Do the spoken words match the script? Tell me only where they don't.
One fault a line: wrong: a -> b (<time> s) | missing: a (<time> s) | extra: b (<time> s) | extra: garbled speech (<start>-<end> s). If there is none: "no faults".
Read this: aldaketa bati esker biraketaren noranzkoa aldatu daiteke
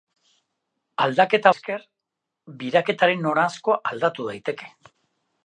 missing: bati (1.5 s)